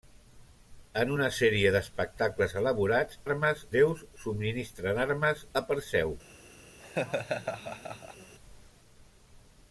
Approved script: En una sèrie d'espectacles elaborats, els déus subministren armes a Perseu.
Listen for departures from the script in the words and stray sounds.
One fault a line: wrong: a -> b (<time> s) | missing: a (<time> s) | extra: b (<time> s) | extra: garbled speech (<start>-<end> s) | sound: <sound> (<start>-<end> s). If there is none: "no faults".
wrong: els -> armes (3.2 s)
sound: laugh (6.8-8.3 s)